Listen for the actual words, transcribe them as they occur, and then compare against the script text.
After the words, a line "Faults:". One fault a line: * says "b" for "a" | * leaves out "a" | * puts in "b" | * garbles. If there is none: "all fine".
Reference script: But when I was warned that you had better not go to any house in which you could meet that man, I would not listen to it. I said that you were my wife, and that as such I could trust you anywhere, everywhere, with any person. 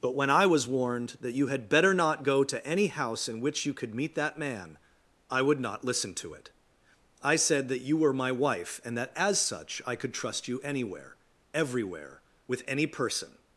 But when I was warned that you had better not go to any house in which you could meet that man, I would not listen to it. I said that you were my wife, and that as such I could trust you anywhere, everywhere, with any person.
Faults:
all fine